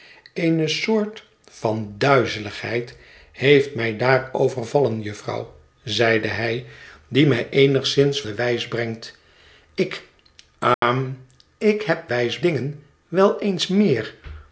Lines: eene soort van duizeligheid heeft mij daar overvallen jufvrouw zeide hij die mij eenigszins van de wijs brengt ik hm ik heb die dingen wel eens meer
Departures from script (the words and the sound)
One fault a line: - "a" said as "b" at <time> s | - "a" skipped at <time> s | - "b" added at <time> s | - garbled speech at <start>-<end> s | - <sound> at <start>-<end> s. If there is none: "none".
- "van" skipped at 8.2 s
- dropout at 10.7-10.8 s
- "die" said as "wijs" at 12.1 s